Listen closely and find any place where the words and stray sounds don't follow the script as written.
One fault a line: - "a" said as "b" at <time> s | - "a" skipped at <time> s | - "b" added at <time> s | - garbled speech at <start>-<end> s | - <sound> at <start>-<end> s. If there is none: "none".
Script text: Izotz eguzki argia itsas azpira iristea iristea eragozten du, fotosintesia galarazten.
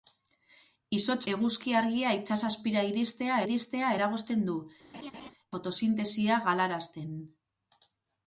- laugh at 4.9-5.3 s